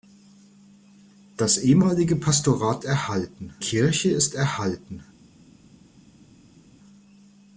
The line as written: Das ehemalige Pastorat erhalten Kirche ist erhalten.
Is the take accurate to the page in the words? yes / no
yes